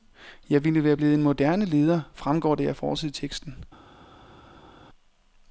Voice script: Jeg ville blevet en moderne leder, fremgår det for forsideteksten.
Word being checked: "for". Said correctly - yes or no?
no